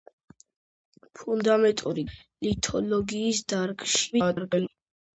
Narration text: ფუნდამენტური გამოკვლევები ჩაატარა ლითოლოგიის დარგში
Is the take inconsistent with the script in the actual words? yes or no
yes